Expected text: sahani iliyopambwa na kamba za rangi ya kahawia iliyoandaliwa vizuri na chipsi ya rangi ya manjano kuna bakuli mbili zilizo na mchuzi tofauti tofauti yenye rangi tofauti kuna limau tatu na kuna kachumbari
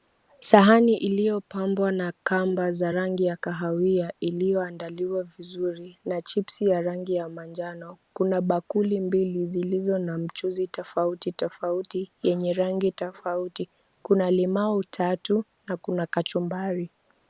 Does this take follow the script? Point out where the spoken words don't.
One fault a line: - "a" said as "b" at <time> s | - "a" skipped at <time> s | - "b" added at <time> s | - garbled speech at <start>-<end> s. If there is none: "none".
none